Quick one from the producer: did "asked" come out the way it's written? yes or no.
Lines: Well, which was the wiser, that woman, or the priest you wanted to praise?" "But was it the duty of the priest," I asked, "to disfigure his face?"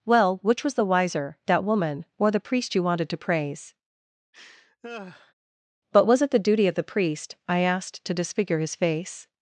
yes